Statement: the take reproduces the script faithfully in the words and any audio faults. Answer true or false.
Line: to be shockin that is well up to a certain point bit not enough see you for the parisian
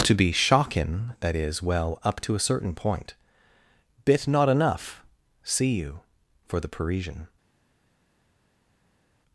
true